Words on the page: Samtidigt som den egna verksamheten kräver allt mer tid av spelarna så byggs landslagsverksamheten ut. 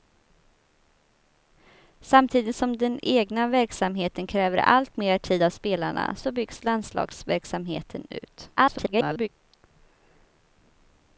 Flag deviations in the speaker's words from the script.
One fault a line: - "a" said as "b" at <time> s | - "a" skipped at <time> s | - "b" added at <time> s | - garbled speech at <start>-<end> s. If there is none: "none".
- garbled speech at 8.6-9.3 s